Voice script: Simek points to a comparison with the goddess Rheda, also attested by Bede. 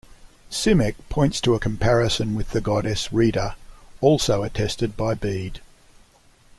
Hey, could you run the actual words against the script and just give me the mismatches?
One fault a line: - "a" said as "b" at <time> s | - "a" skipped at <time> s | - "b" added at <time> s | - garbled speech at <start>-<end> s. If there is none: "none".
none